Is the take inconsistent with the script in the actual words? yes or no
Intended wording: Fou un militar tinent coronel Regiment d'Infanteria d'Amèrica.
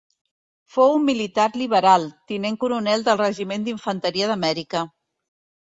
yes